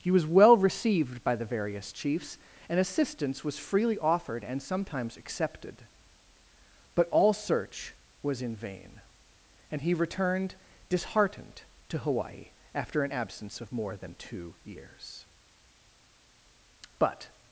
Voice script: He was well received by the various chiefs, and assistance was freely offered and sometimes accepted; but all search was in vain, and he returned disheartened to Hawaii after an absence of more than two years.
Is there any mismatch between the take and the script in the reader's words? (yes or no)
yes